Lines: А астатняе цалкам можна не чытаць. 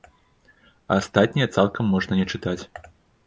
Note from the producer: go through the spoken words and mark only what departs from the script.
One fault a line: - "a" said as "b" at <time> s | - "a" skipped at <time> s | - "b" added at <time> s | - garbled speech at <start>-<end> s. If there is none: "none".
none